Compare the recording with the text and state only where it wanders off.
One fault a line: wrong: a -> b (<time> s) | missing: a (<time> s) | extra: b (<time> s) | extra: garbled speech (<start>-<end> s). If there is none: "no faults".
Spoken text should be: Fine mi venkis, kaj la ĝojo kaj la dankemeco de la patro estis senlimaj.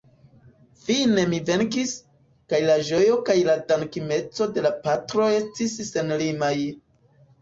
no faults